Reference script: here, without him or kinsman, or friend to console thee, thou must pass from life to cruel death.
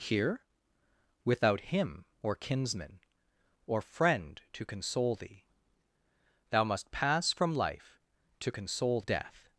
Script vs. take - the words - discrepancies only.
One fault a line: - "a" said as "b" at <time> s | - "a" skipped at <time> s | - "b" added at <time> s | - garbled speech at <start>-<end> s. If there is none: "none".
- "cruel" said as "console" at 8.5 s